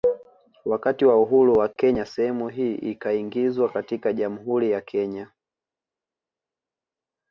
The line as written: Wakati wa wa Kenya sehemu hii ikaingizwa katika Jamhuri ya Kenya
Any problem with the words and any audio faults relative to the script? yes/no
yes